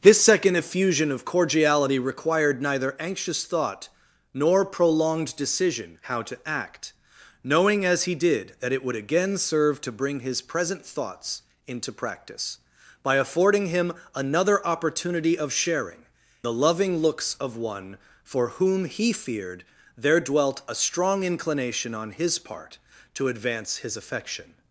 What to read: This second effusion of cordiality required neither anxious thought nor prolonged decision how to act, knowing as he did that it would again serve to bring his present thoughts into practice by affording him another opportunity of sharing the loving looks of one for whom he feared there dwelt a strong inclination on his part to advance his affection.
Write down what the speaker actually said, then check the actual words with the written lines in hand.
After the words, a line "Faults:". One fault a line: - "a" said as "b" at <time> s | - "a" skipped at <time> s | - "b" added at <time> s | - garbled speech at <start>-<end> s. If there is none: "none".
This second effusion of cordiality required neither anxious thought nor prolonged decision how to act, knowing as he did that it would again serve to bring his present thoughts into practice by affording him another opportunity of sharing the loving looks of one for whom he feared there dwelt a strong inclination on his part to advance his affection.
Faults:
none